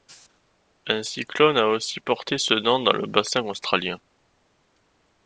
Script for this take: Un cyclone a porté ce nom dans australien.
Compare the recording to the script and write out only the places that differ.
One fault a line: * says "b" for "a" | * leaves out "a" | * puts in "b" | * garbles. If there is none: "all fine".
* puts in "aussi"
* puts in "le bassin"